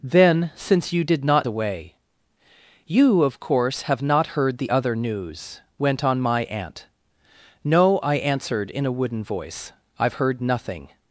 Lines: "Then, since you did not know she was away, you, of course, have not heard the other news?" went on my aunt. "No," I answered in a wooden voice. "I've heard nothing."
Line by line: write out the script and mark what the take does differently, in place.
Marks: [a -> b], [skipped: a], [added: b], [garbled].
"Then, since you did not [skipped: know she was] away, you, of course, have not heard the other news?" went on my aunt. "No," I answered in a wooden voice. "I've heard nothing."